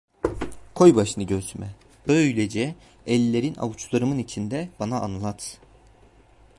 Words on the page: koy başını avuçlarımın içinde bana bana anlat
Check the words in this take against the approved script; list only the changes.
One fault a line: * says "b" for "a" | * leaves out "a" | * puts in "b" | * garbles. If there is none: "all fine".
* puts in "göğsüme böylece ellerin"
* leaves out "bana"